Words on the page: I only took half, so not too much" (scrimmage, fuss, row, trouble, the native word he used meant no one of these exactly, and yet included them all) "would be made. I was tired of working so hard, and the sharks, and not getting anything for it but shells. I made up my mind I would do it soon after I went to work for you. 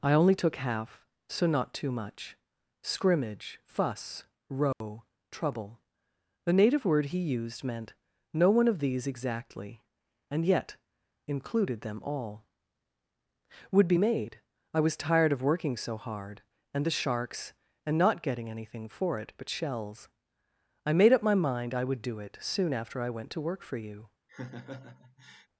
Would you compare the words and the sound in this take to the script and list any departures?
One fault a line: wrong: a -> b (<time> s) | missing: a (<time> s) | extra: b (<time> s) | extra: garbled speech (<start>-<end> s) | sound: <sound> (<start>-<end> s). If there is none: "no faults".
sound: dropout (4.7-4.8 s)
sound: laugh (24.3-25.5 s)